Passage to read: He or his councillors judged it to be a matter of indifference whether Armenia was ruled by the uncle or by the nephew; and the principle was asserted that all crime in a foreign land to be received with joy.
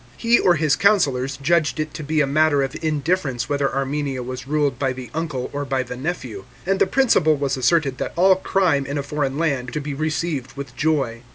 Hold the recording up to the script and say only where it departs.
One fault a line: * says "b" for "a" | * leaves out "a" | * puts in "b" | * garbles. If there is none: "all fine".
all fine